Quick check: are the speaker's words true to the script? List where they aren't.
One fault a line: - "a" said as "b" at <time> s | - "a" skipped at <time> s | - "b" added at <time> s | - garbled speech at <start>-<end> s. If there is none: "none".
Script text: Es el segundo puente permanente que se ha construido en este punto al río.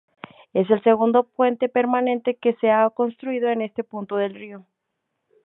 - "al" said as "del" at 4.2 s